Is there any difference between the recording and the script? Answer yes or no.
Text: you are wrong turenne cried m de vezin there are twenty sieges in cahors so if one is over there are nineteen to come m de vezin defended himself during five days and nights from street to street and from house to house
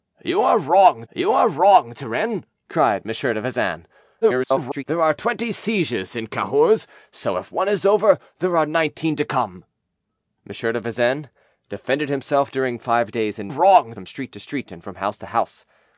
yes